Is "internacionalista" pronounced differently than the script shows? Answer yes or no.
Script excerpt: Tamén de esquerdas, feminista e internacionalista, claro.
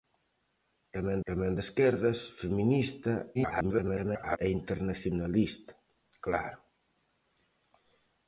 no